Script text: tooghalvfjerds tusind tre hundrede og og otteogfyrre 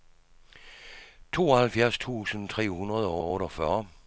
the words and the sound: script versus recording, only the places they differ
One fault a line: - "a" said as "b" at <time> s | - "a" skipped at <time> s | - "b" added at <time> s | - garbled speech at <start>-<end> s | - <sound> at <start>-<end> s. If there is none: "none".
none